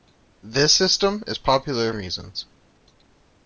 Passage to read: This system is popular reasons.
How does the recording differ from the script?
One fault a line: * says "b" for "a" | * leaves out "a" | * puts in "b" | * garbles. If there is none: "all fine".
all fine